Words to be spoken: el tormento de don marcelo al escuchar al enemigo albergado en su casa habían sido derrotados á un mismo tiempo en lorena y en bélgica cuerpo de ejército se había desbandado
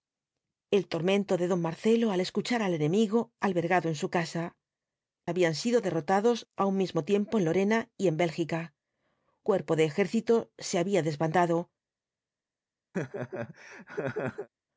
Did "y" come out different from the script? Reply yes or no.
no